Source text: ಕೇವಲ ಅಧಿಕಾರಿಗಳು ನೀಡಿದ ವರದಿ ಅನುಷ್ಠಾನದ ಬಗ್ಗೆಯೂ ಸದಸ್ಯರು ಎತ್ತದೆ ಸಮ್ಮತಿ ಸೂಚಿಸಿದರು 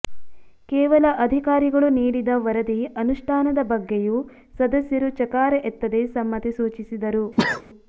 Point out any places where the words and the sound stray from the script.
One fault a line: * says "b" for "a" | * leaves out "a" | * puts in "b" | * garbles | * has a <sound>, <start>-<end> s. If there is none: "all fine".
* puts in "ಚಕಾರ"
* has a sneeze, 7.4-7.6 s